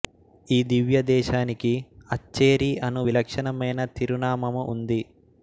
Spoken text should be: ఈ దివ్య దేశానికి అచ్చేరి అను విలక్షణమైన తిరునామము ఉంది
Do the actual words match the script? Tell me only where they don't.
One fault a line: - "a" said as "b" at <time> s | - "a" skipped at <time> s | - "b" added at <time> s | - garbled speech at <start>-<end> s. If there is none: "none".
none